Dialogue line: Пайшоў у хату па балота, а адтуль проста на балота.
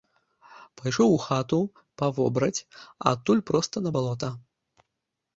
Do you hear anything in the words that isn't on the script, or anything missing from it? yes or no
yes